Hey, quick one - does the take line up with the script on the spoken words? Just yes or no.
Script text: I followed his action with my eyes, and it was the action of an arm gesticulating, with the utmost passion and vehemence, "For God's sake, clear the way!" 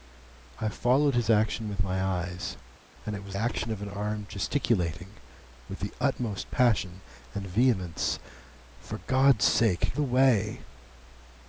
no